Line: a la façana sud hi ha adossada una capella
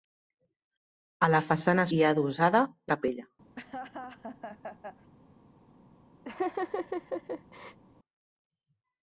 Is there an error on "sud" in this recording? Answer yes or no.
yes